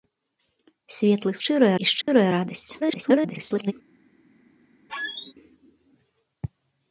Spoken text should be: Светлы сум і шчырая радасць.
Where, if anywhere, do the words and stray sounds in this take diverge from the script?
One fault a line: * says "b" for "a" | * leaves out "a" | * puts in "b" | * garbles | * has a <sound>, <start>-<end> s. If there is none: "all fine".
* says "шчырая" for "сум"
* has a dropout, 2.0-2.1 s
* garbles
* has a squeak, 4.9-5.3 s